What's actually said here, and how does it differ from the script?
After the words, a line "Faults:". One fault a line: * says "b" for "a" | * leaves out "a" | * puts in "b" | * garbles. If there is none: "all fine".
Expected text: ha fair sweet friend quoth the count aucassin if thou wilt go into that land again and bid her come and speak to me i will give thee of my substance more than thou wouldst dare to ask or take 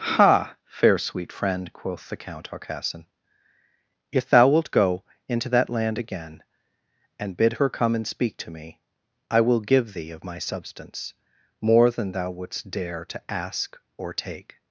ha fair sweet friend quoth the count aucassin if thou wilt go into that land again and bid her come and speak to me i will give thee of my substance more than thou wouldst dare to ask or take
Faults:
all fine